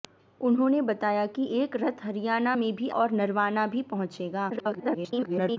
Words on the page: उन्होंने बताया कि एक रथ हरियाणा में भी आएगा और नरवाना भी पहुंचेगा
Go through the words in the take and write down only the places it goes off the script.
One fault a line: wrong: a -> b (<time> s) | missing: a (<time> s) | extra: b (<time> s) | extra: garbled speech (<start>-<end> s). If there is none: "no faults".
missing: आएगा (2.9 s)
extra: garbled speech (4.5-5.6 s)